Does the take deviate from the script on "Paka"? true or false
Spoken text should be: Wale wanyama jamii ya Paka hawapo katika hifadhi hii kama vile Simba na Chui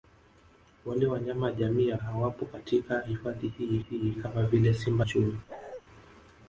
true